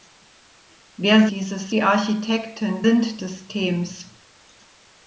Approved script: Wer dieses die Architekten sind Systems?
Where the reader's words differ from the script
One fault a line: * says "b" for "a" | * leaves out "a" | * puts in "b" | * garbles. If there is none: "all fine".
all fine